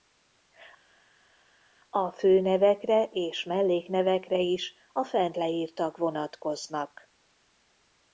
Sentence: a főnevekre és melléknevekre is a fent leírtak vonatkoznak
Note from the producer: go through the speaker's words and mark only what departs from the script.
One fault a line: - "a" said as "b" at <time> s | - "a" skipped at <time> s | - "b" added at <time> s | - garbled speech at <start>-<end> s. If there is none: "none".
none